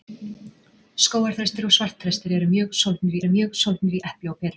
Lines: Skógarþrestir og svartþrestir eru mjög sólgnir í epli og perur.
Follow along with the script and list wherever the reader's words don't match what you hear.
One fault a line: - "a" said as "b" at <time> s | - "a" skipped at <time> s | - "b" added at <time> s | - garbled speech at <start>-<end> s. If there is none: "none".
- "eru mjög sólgnir" added at 3.2 s